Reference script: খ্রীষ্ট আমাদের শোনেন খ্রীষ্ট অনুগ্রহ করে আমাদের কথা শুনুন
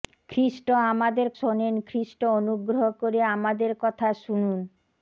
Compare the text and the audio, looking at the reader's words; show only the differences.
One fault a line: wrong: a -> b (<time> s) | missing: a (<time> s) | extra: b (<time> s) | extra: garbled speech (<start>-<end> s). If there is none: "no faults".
no faults